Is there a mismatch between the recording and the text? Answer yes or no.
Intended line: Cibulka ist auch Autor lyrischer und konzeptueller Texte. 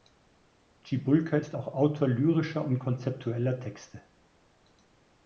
no